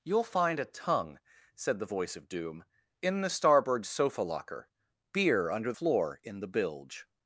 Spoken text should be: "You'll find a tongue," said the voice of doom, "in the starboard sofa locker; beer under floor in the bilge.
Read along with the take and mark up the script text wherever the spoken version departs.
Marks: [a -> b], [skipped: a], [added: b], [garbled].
"You'll find a tongue," said the voice of doom, "in the starboard sofa locker; beer under floor in the bilge.